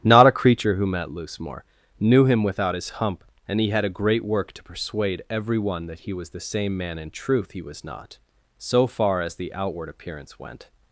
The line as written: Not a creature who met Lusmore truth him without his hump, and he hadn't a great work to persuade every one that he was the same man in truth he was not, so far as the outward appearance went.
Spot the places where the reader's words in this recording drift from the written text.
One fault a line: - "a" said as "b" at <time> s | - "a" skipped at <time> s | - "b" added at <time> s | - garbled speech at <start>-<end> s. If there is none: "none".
- "truth" said as "knew" at 2.0 s
- "hadn't" said as "had" at 3.7 s